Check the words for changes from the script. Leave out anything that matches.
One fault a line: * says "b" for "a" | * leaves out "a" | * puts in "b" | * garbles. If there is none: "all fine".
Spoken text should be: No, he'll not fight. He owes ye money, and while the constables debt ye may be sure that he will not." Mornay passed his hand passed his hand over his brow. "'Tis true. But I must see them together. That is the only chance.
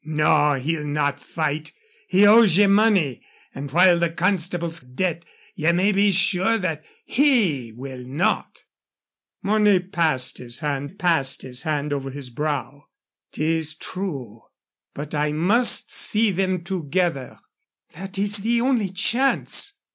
all fine